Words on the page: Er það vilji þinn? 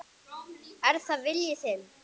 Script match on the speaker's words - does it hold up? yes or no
yes